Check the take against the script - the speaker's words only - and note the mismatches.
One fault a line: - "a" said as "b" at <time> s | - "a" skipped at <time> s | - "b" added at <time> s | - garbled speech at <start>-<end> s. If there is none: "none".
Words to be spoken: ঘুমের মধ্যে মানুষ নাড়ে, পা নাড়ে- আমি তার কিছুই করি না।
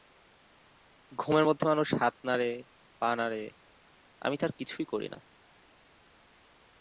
- "হাত" added at 1.9 s